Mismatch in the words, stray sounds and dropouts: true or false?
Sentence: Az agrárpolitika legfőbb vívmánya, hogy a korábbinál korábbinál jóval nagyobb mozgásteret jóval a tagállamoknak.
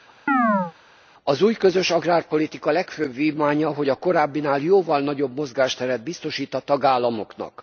true